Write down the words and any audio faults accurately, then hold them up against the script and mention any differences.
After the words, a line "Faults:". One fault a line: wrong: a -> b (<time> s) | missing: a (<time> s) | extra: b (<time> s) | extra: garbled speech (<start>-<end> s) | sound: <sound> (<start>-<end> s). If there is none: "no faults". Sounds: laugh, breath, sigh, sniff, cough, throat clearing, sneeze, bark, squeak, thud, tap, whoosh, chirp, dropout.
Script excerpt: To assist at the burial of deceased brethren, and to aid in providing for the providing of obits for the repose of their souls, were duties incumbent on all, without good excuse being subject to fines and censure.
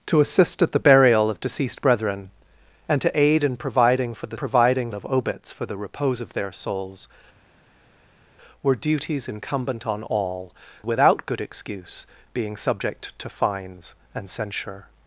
To assist at the burial of deceased brethren, and to aid in providing for the providing of obits for the repose of their souls, were duties incumbent on all, without good excuse being subject to fines and censure.
Faults:
no faults